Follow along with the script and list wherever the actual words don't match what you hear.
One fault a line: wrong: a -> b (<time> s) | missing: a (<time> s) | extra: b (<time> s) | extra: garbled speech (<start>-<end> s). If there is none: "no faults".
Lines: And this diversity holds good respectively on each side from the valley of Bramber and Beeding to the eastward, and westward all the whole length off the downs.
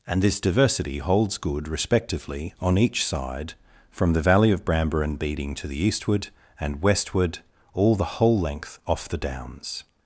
no faults